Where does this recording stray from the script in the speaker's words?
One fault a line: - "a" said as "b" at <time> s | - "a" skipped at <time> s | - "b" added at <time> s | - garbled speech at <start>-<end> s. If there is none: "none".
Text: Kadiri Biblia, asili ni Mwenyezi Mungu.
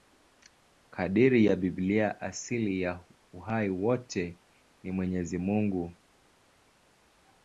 - "ya" added at 1.4 s
- "ya uhai wote" added at 2.8 s